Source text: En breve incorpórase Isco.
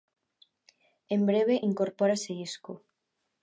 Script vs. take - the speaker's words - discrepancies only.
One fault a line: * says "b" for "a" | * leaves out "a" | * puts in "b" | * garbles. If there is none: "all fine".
all fine